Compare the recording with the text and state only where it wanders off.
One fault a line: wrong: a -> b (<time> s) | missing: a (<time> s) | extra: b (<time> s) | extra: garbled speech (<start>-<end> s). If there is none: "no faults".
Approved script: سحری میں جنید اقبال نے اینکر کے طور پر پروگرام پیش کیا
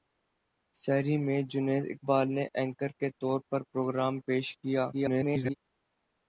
extra: garbled speech (4.9-5.5 s)